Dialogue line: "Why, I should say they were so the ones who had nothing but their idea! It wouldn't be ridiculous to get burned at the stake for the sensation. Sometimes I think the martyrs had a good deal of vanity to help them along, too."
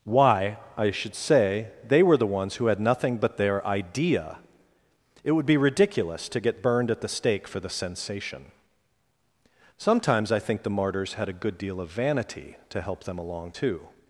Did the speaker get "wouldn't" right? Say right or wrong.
wrong